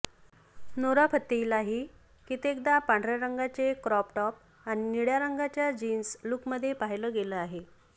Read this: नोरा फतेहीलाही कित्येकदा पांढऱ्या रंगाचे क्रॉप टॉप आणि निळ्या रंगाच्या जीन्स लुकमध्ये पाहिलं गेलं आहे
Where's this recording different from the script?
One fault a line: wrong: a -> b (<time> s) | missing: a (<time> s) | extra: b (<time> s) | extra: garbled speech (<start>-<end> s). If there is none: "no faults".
no faults